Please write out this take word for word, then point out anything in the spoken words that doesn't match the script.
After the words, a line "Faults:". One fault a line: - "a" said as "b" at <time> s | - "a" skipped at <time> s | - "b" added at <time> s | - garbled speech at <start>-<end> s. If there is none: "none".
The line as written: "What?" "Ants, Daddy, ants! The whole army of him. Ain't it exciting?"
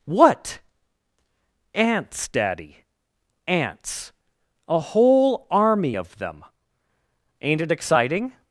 "What?" "Ants, Daddy, ants! A whole army of them. Ain't it exciting?"
Faults:
- "The" said as "A" at 4.7 s
- "him" said as "them" at 6.2 s